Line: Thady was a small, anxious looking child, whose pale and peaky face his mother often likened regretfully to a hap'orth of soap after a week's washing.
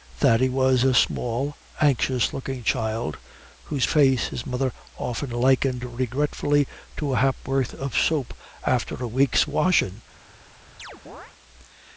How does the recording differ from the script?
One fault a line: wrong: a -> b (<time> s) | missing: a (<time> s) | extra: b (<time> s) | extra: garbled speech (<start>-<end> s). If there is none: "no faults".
missing: pale and peaky (3.9 s)